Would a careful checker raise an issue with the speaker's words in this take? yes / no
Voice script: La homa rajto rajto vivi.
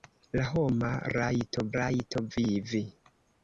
no